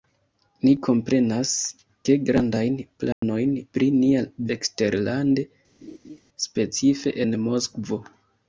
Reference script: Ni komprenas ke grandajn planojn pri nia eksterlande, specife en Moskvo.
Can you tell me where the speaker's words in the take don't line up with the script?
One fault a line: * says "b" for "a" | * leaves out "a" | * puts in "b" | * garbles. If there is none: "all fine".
all fine